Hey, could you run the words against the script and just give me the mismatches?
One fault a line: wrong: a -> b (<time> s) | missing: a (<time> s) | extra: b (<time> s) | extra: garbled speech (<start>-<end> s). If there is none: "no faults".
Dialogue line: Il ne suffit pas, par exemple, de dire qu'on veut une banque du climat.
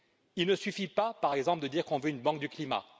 no faults